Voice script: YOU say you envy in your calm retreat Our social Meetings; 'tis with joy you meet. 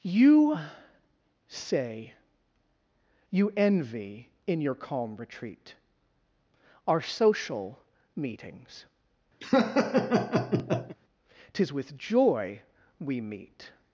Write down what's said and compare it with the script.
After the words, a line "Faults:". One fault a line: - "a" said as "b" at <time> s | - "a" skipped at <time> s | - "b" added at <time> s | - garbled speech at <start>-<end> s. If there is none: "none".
YOU say you envy in your calm retreat Our social Meetings; 'tis with joy we meet.
Faults:
- "you" said as "we" at 13.0 s